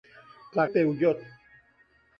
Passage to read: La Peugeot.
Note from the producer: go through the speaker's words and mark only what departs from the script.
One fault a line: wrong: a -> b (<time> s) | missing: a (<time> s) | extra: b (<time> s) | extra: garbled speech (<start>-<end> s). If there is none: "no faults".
no faults